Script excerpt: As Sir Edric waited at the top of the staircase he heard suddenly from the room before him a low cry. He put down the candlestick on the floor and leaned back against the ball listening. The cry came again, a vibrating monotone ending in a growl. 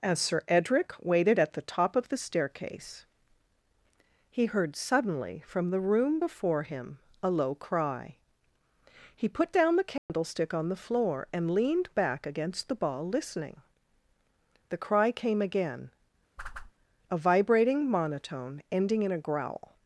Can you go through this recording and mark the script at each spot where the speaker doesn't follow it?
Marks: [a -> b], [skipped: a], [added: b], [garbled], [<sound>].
As Sir Edric waited at the top of the staircase he heard suddenly from the room before him a low cry. He put down the candlestick [dropout] on the floor and leaned back against the ball listening. The cry came again, [whoosh] a vibrating monotone ending in a growl.